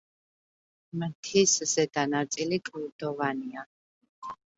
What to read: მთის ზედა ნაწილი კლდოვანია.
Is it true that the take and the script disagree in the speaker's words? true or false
false